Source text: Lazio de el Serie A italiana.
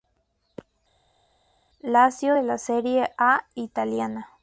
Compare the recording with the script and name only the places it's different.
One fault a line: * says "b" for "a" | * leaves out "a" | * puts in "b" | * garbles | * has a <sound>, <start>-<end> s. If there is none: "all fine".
* says "la" for "el"